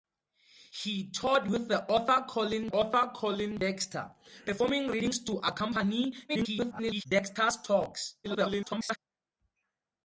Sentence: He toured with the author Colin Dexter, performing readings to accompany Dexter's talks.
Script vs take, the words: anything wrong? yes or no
yes